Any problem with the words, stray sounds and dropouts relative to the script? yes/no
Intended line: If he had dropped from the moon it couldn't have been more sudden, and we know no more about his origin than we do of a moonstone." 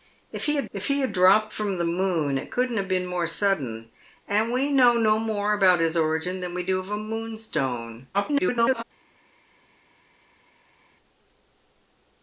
yes